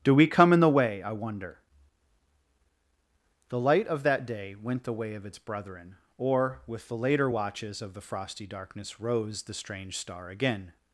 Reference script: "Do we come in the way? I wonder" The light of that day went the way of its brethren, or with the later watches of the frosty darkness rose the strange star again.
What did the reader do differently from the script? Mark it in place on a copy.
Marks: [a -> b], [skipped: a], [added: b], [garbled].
"Do we come in the way? I wonder" The light of that day went the way of its brethren, or with the later watches of the frosty darkness rose the strange star again.